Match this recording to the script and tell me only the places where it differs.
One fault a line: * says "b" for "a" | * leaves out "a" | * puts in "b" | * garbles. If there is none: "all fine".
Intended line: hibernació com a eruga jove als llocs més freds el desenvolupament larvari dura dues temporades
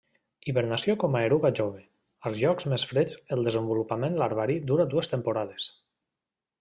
all fine